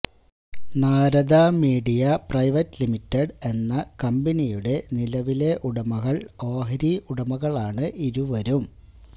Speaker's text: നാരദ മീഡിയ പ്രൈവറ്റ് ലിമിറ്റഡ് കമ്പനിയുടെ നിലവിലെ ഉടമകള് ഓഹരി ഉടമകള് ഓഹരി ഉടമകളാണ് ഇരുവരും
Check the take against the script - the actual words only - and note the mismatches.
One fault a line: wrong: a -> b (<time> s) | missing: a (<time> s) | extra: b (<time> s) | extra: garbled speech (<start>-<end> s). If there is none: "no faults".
extra: എന്ന (3.5 s)
missing: ഉടമകള് ഓഹരി (6.9 s)